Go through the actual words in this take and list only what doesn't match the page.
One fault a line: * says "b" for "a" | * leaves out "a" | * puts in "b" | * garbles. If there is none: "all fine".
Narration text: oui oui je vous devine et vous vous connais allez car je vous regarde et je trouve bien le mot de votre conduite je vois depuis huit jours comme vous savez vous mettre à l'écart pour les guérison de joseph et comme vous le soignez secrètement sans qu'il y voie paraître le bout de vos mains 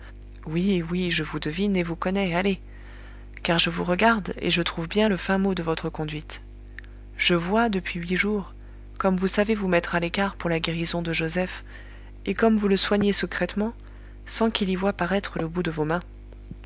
* leaves out "vous"
* puts in "fin"
* says "la" for "les"